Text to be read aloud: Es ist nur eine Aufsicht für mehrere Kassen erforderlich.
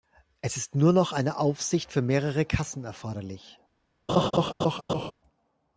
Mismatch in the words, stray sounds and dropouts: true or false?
true